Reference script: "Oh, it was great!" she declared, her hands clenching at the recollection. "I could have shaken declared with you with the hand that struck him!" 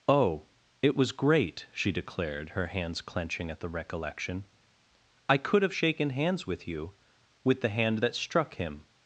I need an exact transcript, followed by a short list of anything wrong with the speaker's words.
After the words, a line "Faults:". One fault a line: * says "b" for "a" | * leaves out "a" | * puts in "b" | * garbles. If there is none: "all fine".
"Oh, it was great!" she declared, her hands clenching at the recollection. "I could have shaken hands with you with the hand that struck him!"
Faults:
* says "hands" for "declared"